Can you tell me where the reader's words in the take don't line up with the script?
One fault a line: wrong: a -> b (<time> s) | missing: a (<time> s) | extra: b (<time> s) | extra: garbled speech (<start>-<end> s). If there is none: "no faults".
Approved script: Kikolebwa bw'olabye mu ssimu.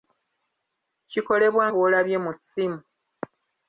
no faults